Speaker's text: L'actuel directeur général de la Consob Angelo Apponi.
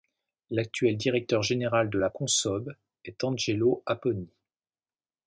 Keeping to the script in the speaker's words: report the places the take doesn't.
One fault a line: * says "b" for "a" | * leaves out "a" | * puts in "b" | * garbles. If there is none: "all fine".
* puts in "est"